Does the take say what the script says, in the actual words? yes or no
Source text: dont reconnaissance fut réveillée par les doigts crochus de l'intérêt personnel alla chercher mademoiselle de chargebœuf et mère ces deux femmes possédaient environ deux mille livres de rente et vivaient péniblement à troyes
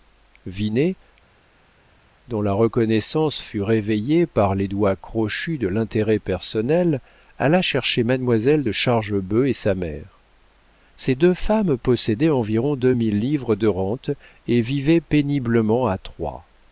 no